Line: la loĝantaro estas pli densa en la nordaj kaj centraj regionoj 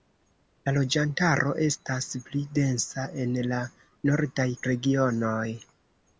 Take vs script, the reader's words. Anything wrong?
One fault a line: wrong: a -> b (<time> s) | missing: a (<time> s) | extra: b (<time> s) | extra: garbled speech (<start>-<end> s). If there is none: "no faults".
missing: kaj centraj (4.5 s)